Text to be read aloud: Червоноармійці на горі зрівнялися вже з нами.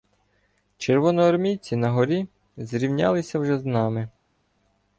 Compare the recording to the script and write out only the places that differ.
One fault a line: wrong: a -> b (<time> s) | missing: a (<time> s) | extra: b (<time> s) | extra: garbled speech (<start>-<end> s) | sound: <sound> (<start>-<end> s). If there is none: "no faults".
no faults